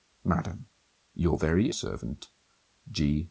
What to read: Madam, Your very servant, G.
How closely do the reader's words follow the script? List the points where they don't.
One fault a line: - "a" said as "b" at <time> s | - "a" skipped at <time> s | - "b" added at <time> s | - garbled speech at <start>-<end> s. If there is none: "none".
none